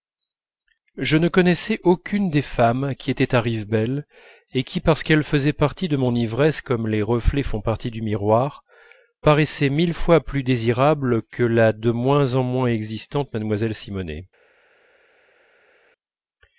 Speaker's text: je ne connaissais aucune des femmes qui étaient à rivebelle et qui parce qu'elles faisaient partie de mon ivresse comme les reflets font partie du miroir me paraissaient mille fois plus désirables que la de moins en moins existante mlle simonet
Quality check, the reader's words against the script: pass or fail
fail